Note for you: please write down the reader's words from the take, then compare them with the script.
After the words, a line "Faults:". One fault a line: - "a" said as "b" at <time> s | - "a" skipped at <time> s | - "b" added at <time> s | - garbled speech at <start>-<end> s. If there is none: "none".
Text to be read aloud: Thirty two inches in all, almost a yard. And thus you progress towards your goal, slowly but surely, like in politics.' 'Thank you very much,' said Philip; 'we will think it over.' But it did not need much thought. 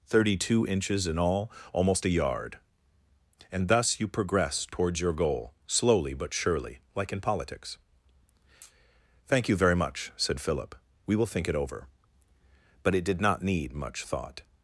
Thirty two inches in all, almost a yard. And thus you progress towards your goal, slowly but surely, like in politics.' 'Thank you very much,' said Philip; 'we will think it over.' But it did not need much thought.
Faults:
none